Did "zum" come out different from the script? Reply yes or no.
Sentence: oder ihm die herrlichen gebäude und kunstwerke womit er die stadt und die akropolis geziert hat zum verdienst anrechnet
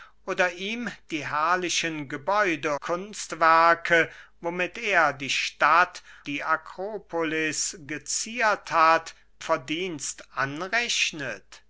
yes